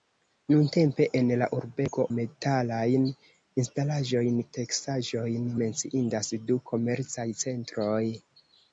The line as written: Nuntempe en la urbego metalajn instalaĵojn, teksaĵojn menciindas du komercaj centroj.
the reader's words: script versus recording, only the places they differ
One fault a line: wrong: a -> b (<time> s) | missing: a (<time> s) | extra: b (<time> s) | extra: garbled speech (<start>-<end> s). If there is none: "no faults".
no faults